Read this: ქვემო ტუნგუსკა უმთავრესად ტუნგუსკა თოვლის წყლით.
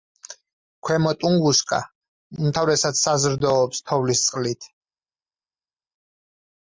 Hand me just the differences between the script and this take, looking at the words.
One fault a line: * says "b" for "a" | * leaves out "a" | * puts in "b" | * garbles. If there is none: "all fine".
* says "საზრდოობს" for "ტუნგუსკა"